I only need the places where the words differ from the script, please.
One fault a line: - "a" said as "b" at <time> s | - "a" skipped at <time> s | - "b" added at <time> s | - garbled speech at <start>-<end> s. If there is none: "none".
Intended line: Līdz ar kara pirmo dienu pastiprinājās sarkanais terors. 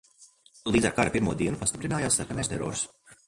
none